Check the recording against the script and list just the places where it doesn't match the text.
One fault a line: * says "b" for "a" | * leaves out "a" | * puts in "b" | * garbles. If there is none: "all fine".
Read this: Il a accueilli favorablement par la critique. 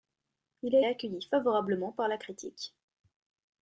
all fine